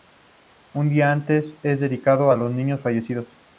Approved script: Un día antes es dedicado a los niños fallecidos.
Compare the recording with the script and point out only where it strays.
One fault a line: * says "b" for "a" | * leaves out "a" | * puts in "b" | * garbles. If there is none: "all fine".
all fine